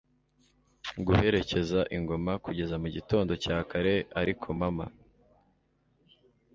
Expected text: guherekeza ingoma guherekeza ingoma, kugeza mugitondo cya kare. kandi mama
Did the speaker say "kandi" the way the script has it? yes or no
no